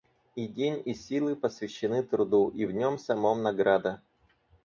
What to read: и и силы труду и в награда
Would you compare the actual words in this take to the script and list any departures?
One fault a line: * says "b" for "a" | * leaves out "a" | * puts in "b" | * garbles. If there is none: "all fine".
* puts in "день"
* puts in "посвящены"
* puts in "нем самом"